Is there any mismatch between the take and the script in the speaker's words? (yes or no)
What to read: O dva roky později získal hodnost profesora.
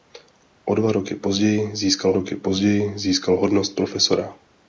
yes